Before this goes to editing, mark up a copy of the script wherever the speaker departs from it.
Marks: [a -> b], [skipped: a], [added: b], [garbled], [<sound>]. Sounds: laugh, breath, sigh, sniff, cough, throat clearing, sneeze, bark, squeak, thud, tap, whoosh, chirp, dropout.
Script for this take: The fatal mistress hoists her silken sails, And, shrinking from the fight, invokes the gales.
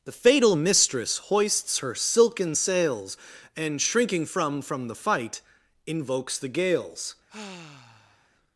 The fatal mistress hoists her silken sails, And, shrinking from [added: from] the fight, invokes the gales. [sigh]